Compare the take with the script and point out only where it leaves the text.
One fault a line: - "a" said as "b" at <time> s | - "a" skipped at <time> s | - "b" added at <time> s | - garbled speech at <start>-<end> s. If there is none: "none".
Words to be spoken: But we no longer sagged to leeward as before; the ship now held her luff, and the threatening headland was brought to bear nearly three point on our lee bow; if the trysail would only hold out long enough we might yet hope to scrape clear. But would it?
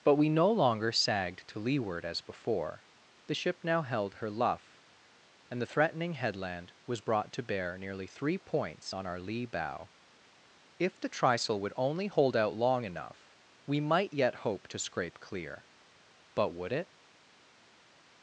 - "point" said as "points" at 8.4 s